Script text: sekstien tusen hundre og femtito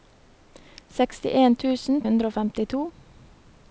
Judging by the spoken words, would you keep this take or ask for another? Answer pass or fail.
pass